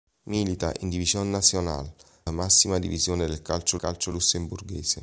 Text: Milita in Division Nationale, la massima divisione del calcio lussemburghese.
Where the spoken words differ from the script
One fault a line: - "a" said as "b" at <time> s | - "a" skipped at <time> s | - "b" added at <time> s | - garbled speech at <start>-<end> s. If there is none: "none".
- "la" skipped at 1.9 s
- "calcio" added at 3.8 s